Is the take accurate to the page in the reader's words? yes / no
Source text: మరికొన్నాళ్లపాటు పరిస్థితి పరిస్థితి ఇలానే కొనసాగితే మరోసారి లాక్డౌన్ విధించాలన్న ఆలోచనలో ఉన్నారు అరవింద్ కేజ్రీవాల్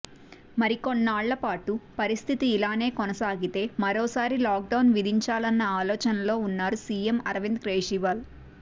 no